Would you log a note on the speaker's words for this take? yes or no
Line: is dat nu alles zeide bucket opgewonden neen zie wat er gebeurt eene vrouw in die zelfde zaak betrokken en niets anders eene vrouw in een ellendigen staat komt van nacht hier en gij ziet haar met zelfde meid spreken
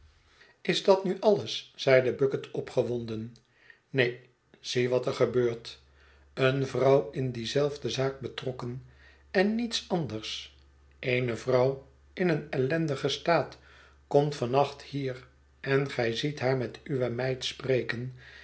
yes